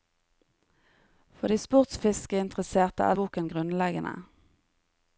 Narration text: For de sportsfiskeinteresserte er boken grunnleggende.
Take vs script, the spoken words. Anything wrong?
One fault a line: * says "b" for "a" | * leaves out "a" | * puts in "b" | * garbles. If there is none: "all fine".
all fine